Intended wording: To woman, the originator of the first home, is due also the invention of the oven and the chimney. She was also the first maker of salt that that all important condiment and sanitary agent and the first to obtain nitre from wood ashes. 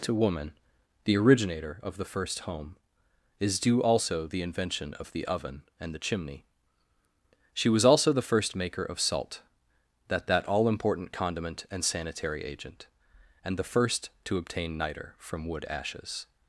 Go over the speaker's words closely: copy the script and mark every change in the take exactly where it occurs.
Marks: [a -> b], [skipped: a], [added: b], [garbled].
To woman, the originator of the first home, is due also the invention of the oven and the chimney. She was also the first maker of salt that that all important condiment and sanitary agent and the first to obtain nitre from wood ashes.